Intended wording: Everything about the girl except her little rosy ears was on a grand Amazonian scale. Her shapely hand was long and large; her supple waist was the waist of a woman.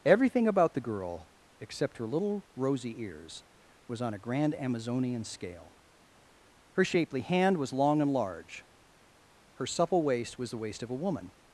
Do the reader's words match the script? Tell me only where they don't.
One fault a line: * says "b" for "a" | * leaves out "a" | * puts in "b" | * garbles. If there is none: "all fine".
all fine